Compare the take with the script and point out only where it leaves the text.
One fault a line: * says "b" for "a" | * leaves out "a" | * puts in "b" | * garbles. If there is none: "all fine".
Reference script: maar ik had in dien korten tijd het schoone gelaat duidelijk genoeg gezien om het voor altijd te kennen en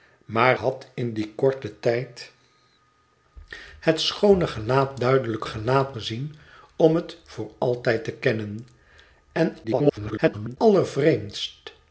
* leaves out "ik"
* says "gelaat" for "genoeg"
* garbles